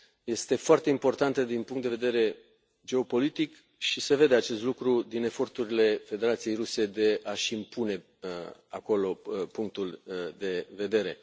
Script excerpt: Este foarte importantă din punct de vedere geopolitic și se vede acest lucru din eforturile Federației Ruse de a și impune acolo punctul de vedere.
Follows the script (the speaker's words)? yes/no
yes